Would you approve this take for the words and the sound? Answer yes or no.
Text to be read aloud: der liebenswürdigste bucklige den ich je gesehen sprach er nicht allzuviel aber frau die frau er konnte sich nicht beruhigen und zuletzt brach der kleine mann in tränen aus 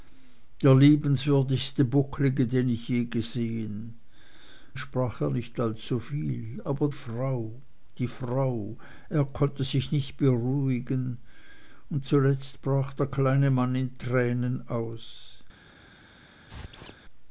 no